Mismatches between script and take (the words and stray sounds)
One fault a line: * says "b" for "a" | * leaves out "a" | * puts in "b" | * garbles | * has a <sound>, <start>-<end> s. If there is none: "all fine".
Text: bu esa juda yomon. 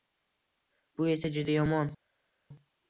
all fine